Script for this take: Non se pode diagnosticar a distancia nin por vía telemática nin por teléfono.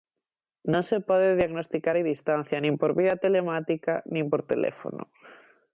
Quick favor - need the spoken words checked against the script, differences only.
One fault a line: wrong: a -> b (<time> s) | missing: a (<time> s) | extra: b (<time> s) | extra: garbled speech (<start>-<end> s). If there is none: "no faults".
no faults